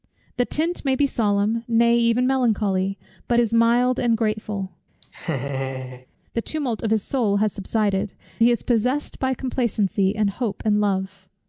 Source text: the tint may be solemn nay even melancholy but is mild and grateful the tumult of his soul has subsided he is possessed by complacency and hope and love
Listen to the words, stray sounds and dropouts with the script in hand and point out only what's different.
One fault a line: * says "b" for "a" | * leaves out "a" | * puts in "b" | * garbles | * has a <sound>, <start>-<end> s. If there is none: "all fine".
* has a laugh, 5.0-6.1 s